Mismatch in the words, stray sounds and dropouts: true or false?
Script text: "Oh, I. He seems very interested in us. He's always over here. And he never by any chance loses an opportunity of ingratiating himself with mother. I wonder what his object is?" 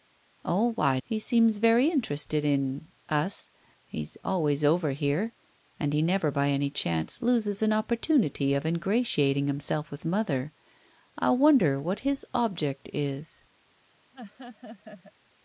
true